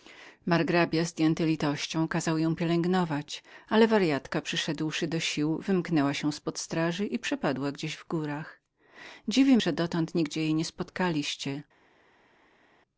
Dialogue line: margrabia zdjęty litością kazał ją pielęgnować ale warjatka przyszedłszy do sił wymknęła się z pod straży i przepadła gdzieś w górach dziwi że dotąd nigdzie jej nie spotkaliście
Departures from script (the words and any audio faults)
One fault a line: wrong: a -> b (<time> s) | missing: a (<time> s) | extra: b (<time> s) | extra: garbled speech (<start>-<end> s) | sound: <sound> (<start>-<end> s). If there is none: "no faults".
no faults